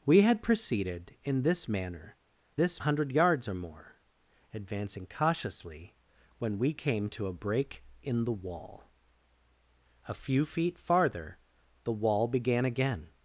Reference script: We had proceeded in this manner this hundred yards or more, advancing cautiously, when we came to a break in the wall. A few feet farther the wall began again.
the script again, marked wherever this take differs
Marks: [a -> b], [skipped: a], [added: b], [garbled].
We had proceeded in this manner this hundred yards or more, advancing cautiously, when we came to a break in the wall. A few feet farther the wall began again.